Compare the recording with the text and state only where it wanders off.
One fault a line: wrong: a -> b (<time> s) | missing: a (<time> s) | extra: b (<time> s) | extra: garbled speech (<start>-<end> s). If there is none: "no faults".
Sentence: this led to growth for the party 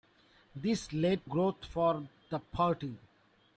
missing: to (1.3 s)